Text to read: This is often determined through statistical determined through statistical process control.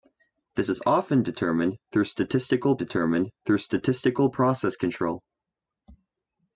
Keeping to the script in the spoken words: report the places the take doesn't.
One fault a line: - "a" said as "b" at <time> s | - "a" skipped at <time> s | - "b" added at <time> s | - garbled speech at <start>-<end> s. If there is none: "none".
none